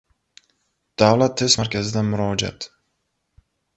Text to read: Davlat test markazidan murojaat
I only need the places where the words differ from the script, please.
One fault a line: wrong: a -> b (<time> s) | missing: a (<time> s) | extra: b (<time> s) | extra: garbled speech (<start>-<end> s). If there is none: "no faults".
no faults